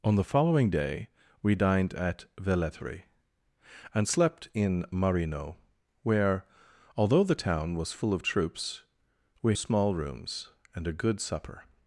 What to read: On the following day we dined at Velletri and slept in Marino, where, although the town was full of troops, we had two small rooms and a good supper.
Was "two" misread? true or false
true